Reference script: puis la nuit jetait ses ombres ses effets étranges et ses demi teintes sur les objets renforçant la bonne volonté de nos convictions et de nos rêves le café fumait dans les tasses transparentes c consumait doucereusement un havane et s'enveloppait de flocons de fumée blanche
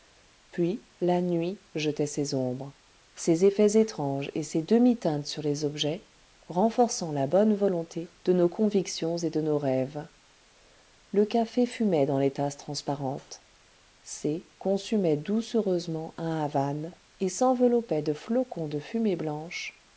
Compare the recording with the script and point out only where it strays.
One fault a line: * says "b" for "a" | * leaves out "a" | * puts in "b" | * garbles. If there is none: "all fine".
all fine